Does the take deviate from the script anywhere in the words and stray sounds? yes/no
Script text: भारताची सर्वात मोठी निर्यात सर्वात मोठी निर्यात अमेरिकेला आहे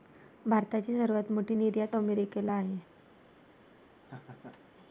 yes